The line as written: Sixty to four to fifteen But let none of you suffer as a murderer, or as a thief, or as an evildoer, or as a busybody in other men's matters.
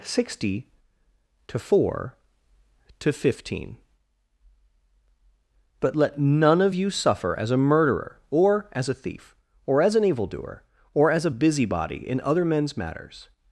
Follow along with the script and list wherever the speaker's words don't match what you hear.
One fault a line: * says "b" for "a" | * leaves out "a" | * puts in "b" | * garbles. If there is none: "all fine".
all fine